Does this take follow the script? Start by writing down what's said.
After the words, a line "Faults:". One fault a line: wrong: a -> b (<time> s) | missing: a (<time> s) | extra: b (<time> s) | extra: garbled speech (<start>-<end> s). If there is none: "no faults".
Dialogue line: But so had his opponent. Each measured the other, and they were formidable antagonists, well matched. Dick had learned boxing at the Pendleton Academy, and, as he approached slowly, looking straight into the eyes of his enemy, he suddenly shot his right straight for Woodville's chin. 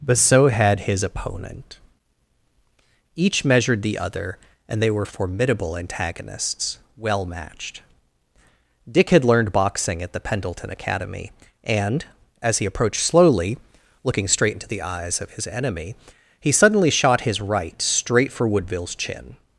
But so had his opponent. Each measured the other, and they were formidable antagonists, well matched. Dick had learned boxing at the Pendleton Academy, and, as he approached slowly, looking straight into the eyes of his enemy, he suddenly shot his right straight for Woodville's chin.
Faults:
no faults